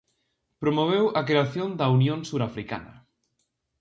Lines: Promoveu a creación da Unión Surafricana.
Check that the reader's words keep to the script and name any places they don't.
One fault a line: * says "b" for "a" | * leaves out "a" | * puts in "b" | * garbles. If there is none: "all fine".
all fine